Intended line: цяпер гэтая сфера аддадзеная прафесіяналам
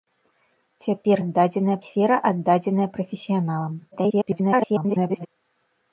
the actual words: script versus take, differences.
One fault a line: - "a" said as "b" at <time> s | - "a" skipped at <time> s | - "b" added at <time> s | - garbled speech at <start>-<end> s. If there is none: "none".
- "гэтая" said as "аддадзеная" at 1.2 s
- garbled speech at 3.9-5.3 s